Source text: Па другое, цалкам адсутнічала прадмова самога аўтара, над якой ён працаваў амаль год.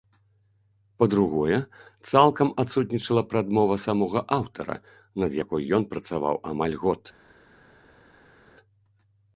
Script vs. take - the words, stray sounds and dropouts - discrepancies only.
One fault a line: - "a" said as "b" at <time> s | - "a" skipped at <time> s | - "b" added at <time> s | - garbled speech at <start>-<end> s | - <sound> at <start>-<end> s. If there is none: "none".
none